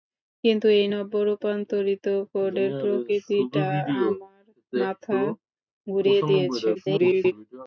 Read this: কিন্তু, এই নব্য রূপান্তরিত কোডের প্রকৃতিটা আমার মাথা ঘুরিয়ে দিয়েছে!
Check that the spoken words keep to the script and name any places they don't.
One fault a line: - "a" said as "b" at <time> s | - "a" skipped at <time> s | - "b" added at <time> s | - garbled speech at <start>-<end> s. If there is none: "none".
- garbled speech at 6.7-7.3 s